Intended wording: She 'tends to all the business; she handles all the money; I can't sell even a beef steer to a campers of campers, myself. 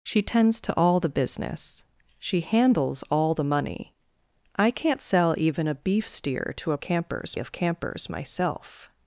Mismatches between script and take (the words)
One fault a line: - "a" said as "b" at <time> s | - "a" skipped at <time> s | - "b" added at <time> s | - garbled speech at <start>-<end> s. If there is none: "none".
none